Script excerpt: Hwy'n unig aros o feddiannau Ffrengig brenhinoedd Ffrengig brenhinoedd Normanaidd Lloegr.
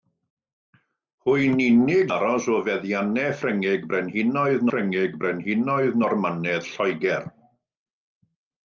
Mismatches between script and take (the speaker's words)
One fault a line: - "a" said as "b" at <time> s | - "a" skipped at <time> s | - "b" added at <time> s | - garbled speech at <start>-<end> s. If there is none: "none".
none